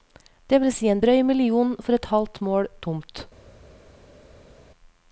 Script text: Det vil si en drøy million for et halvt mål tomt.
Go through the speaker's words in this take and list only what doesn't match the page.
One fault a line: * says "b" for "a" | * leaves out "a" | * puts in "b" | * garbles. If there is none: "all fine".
all fine